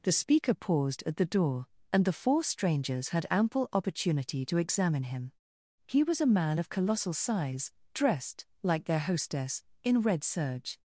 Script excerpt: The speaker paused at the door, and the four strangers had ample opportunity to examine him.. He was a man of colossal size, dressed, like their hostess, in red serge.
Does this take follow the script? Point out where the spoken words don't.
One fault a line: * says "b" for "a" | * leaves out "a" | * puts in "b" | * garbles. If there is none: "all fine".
all fine